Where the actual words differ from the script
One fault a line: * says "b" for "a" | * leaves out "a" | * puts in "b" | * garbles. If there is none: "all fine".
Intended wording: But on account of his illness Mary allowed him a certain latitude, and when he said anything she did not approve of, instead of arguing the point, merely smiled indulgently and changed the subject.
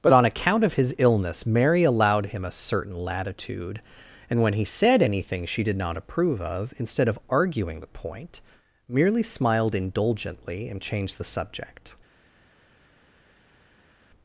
all fine